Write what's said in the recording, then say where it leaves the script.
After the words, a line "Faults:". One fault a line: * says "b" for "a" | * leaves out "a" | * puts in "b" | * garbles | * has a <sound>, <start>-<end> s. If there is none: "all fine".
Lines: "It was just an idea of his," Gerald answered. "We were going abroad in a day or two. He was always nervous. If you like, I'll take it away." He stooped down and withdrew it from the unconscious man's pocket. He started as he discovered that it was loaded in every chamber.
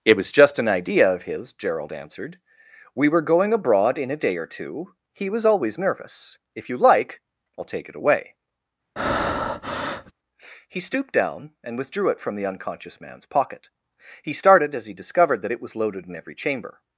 "It was just an idea of his," Gerald answered. "We were going abroad in a day or two. He was always nervous. If you like, I'll take it away." He stooped down and withdrew it from the unconscious man's pocket. He started as he discovered that it was loaded in every chamber.
Faults:
* has a breath, 9.0-10.1 s